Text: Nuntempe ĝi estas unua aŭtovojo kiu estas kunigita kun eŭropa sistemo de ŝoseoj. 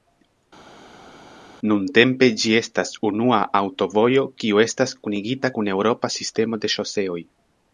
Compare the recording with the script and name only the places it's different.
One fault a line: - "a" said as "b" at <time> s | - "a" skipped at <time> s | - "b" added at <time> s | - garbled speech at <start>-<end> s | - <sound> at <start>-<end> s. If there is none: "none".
none